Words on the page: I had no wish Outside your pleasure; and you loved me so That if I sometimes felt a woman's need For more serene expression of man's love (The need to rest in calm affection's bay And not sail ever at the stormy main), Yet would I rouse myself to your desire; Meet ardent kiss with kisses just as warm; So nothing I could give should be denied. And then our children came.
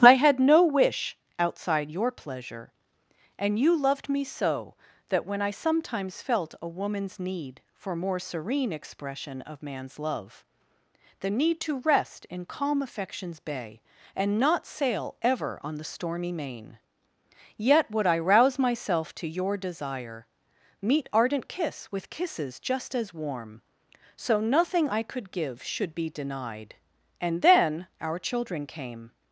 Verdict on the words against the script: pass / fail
fail